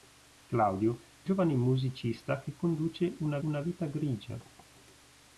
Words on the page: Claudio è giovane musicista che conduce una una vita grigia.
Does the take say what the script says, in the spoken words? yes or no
yes